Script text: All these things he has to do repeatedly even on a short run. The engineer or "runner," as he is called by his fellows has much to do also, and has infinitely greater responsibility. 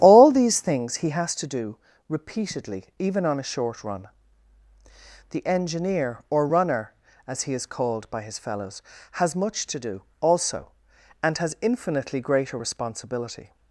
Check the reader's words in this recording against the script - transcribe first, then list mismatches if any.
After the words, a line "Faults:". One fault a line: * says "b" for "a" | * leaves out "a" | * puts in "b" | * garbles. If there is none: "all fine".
All these things he has to do repeatedly even on a short run. The engineer or "runner," as he is called by his fellows has much to do also, and has infinitely greater responsibility.
Faults:
all fine